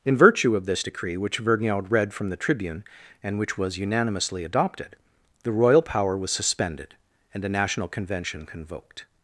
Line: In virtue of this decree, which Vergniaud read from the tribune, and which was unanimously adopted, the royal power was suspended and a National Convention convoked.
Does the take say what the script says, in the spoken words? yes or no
yes